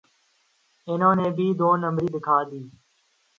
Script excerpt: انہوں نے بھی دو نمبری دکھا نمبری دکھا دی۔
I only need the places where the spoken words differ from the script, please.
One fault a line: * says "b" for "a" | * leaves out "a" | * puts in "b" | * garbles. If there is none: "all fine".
* leaves out "نمبری دکھا"